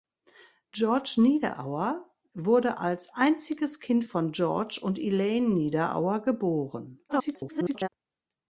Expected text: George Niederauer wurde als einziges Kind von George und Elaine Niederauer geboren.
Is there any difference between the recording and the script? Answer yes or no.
yes